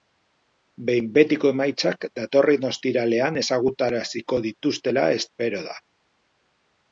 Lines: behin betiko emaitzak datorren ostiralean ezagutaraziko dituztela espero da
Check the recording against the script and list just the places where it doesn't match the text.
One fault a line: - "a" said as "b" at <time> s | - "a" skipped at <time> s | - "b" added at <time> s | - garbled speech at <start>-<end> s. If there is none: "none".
none